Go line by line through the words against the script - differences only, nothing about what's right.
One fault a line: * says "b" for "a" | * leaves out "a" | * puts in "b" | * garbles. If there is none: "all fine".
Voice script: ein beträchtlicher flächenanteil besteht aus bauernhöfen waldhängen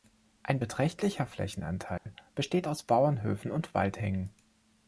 * puts in "und"